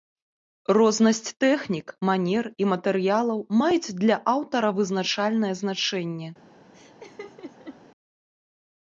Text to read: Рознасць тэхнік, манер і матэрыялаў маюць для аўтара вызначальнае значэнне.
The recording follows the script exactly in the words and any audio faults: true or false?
false